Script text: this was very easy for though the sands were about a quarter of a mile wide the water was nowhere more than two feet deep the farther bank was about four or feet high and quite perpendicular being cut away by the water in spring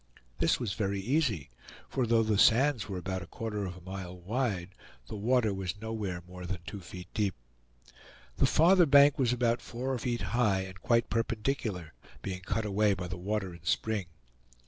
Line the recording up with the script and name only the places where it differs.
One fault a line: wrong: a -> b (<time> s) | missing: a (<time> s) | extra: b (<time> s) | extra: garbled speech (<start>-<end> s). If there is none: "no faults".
no faults